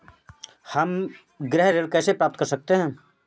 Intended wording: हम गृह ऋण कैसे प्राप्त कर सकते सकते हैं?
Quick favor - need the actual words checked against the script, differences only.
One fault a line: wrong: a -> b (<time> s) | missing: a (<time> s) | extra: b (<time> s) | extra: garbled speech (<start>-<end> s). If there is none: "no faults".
missing: सकते (2.7 s)